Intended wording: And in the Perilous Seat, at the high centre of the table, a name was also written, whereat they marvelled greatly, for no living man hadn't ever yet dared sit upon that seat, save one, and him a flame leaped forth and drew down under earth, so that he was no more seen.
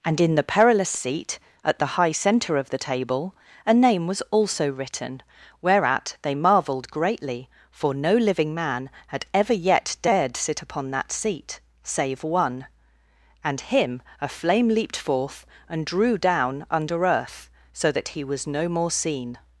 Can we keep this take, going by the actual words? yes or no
no